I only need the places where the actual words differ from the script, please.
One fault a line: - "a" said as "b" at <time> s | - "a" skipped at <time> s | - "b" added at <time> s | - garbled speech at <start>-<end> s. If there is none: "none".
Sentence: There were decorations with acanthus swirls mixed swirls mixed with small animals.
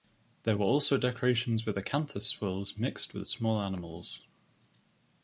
- "also" added at 0.6 s
- "swirls mixed" skipped at 3.1 s